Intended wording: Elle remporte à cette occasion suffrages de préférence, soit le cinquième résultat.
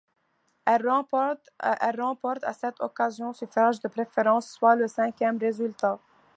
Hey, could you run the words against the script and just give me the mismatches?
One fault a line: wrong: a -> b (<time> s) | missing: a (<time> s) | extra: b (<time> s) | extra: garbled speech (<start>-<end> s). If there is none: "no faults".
no faults